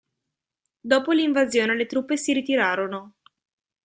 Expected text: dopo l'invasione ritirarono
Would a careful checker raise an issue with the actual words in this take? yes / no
yes